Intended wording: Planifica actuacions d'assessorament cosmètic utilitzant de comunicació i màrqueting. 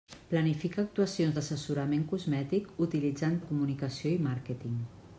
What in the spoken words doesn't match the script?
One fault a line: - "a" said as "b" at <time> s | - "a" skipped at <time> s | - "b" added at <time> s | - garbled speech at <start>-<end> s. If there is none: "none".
none